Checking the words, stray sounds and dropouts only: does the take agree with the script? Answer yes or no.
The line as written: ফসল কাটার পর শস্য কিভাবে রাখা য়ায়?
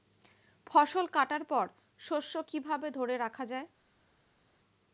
no